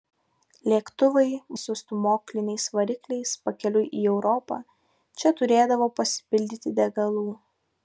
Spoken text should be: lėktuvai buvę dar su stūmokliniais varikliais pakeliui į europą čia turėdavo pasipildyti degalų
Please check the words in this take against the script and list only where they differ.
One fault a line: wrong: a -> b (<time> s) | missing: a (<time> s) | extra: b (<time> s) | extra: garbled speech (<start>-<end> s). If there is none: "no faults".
missing: buvę dar (1.2 s)